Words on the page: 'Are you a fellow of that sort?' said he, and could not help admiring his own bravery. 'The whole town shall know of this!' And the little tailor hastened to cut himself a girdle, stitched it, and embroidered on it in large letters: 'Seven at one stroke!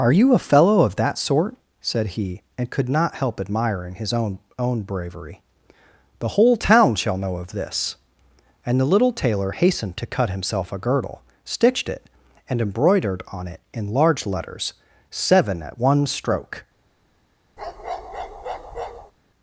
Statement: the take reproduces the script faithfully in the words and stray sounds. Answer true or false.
false